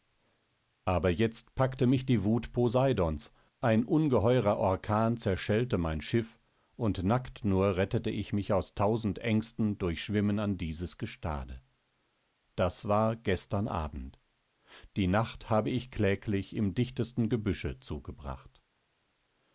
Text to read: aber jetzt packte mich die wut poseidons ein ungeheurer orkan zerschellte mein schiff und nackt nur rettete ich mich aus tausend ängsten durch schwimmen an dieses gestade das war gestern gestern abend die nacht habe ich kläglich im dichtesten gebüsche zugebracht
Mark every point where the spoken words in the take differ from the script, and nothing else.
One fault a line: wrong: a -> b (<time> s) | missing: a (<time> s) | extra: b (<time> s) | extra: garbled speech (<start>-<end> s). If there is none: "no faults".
missing: gestern (13.7 s)